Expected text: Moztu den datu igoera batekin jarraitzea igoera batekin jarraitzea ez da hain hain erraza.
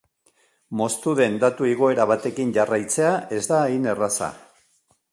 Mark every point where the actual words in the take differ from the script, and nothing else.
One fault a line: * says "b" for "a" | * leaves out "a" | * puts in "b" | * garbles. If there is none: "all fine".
* leaves out "igoera batekin jarraitzea"
* leaves out "hain"